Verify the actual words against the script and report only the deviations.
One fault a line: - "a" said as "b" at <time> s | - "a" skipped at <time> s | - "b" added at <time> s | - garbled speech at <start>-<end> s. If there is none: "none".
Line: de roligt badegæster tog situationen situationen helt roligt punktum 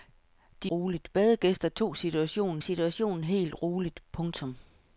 none